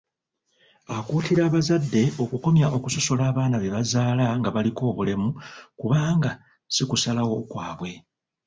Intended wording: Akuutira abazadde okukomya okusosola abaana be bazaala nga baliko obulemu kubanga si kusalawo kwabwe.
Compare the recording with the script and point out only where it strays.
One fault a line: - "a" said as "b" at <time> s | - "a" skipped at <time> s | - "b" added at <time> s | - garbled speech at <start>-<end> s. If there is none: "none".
none